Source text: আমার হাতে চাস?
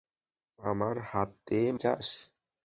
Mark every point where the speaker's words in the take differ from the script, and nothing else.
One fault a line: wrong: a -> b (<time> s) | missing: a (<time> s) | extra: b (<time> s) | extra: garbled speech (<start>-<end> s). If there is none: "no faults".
no faults